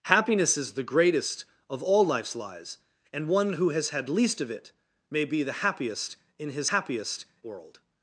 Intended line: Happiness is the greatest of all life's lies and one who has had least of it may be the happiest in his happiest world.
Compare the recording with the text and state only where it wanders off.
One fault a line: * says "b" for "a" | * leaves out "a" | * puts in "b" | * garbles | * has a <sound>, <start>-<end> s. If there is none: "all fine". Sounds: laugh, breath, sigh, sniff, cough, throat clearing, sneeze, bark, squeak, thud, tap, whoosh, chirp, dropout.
all fine